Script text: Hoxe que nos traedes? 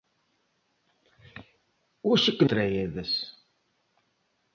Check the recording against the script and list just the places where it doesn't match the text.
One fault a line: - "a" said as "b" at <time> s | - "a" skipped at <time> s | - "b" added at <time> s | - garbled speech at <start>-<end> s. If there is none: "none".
- "nos" skipped at 2.5 s